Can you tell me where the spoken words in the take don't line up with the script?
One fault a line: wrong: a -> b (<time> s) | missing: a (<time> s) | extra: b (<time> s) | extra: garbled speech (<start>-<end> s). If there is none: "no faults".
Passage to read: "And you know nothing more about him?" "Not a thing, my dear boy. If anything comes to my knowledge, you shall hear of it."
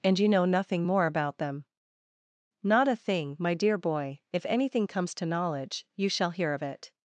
wrong: him -> them (1.4 s)
missing: my (5.3 s)